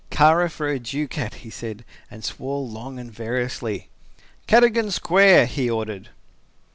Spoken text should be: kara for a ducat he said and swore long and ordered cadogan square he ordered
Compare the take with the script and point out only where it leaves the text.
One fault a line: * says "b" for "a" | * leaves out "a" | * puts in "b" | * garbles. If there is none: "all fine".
* says "variously" for "ordered"